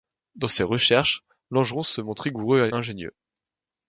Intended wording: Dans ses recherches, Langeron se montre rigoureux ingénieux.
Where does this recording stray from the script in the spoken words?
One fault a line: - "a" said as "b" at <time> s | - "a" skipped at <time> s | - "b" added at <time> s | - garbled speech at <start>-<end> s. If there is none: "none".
none